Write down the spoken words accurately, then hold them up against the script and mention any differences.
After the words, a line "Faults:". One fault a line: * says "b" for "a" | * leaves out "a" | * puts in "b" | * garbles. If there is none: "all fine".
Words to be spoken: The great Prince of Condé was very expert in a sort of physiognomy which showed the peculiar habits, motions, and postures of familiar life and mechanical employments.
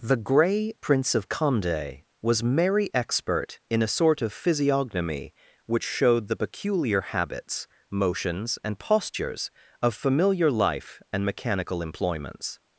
The grey Prince of Condé was merry expert in a sort of physiognomy which showed the peculiar habits, motions, and postures of familiar life and mechanical employments.
Faults:
* says "grey" for "great"
* says "merry" for "very"